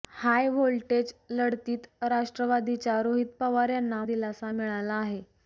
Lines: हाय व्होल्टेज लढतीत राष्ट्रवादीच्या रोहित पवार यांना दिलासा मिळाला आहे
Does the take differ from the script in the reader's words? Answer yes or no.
no